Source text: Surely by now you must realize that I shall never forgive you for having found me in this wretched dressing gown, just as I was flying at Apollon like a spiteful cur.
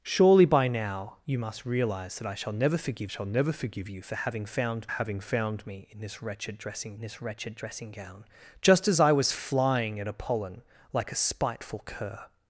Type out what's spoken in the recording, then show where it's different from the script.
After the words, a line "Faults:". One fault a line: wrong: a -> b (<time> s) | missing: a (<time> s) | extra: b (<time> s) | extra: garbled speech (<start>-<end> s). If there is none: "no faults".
Surely by now you must realize that I shall never forgive shall never forgive you for having found having found me in this wretched dressing this wretched dressing gown, just as I was flying at Apollon like a spiteful cur.
Faults:
extra: shall never forgive (3.1 s)
extra: having found (4.9 s)
extra: this wretched dressing (7.0 s)